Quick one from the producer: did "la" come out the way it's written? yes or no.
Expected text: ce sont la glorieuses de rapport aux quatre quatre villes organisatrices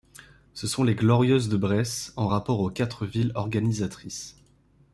no